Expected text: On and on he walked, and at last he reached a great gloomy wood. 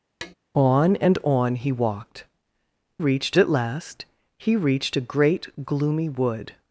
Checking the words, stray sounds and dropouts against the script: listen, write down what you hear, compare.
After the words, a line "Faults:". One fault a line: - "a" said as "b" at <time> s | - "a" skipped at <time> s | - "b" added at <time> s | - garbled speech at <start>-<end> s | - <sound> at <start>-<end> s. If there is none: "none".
On and on he walked, reached at last he reached a great gloomy wood.
Faults:
- tap at 0.2-0.3 s
- "and" said as "reached" at 3.0 s